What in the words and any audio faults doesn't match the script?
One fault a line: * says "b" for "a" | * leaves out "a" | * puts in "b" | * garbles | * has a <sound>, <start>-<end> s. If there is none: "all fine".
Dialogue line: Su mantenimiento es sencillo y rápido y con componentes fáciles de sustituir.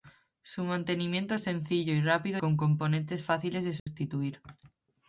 * leaves out "y"
* has a dropout, 3.8-3.9 s